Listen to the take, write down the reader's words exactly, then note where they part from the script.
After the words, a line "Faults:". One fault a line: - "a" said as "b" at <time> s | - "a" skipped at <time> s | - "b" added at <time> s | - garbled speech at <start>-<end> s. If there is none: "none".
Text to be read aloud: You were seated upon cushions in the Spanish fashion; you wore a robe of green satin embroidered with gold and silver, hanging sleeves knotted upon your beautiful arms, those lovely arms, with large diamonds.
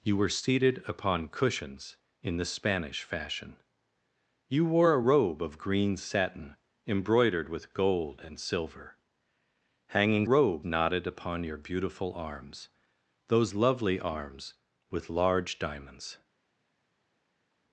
You were seated upon cushions in the Spanish fashion; you wore a robe of green satin embroidered with gold and silver, hanging robe knotted upon your beautiful arms, those lovely arms, with large diamonds.
Faults:
- "sleeves" said as "robe" at 10.3 s